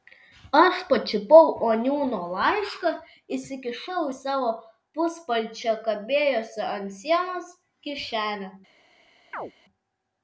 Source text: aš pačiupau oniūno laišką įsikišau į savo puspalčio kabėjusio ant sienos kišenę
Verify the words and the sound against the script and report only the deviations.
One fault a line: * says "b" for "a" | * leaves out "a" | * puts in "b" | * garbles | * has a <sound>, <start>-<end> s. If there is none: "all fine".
* has a chirp, 9.3-9.5 s